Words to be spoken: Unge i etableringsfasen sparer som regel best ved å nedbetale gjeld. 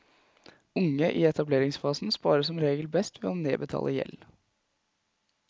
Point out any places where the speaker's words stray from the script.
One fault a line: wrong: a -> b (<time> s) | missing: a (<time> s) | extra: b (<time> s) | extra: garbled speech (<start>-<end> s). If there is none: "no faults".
no faults